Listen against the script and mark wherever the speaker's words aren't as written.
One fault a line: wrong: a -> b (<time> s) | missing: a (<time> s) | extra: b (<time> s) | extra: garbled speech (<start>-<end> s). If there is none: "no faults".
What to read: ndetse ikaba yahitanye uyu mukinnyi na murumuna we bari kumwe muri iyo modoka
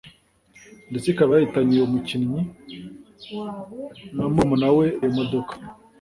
missing: bari kumwe muri (4.9 s)